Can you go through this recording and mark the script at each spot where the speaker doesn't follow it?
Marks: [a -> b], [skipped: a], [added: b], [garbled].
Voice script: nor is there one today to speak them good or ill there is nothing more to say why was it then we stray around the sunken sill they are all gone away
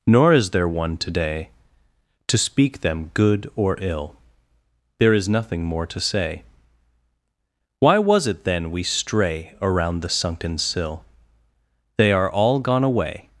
nor is there one today to speak them good or ill there is nothing more to say why was it then we stray around the sunken sill they are all gone away